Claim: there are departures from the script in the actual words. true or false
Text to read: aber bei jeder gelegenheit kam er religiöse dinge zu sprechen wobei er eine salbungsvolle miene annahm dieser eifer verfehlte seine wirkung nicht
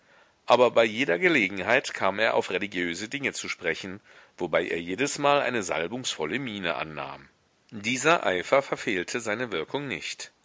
true